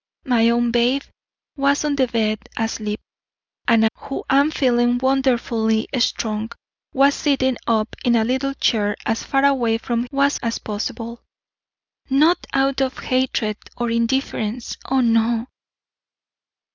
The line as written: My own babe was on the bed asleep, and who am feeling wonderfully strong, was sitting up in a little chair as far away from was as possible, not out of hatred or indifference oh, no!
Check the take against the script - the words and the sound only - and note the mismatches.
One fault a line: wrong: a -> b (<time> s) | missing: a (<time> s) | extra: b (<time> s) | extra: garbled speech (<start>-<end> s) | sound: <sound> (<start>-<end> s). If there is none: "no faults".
no faults